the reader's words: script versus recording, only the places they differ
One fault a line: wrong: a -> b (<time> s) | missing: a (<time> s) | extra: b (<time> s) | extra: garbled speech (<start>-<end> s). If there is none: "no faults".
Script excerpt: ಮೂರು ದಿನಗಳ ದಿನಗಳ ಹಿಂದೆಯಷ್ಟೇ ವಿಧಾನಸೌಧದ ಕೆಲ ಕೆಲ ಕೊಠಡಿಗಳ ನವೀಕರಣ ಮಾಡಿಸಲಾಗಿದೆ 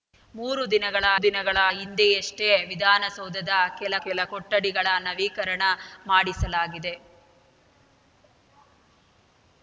no faults